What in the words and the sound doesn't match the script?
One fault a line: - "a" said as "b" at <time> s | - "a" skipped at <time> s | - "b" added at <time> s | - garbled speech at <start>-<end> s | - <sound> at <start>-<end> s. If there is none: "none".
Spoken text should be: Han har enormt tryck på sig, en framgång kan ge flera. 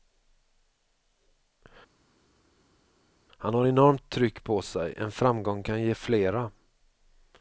none